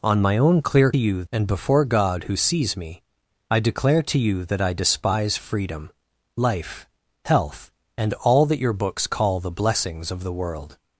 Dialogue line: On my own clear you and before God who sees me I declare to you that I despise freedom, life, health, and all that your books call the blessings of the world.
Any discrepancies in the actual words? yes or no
no